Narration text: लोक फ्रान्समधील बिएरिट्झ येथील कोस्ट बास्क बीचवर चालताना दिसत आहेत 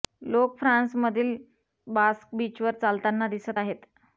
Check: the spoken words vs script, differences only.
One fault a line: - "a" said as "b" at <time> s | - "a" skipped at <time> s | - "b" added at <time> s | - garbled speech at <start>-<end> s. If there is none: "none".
- "बिएरिट्झ येथील कोस्ट" skipped at 1.4 s